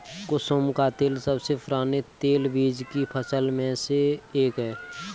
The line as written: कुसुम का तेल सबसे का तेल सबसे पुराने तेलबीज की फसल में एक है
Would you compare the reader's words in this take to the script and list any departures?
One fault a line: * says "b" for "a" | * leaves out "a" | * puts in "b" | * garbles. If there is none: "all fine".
* leaves out "का तेल सबसे"
* puts in "से"